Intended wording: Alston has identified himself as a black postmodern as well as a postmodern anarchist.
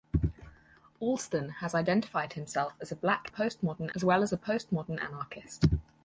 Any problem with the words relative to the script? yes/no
no